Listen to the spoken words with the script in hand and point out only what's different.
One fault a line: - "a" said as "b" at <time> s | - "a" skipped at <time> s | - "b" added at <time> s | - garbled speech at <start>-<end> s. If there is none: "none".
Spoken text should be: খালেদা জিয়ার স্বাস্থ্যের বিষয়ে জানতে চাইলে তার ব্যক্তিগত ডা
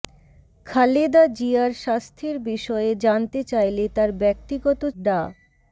none